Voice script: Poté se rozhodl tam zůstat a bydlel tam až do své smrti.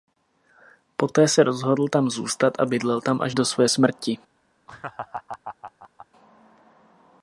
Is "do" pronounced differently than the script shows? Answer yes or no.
no